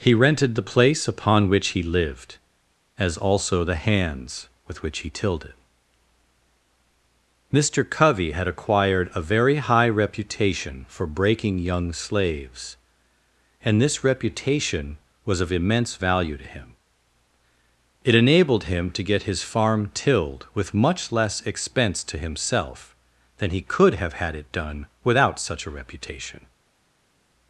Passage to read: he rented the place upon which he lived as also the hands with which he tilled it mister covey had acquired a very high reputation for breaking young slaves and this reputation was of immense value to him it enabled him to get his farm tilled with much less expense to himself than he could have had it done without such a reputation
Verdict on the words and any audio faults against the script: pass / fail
pass